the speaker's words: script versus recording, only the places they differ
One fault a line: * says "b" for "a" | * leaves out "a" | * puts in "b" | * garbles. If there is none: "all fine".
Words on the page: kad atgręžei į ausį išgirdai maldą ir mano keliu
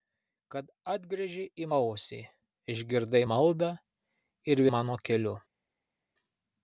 all fine